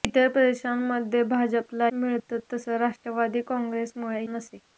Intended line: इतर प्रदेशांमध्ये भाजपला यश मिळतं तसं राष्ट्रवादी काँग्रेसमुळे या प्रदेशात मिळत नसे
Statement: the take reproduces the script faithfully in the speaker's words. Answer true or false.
false